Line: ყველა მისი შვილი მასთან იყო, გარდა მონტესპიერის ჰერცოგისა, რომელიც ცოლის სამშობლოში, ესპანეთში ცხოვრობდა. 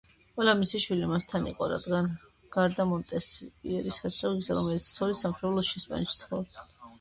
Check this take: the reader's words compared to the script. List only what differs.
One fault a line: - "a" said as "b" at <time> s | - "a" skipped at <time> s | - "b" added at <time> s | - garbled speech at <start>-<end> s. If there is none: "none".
none